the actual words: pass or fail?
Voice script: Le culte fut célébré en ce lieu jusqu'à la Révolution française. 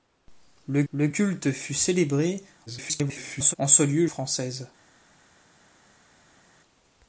fail